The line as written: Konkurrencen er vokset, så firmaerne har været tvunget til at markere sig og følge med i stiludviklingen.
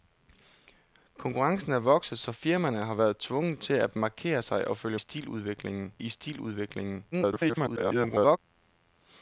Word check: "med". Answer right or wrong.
wrong